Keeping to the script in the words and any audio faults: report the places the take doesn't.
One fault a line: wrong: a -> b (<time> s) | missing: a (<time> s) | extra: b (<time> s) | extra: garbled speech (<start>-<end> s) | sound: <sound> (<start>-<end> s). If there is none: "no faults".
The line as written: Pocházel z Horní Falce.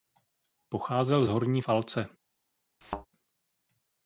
sound: thud (2.8-3.1 s)